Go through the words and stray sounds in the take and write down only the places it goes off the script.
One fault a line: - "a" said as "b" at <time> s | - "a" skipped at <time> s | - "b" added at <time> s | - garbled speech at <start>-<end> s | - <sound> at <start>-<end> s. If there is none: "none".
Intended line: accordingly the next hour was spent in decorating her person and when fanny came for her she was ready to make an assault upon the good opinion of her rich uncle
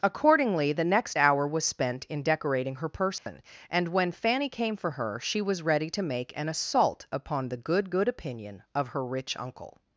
- dropout at 3.2-3.3 s
- "good" added at 7.9 s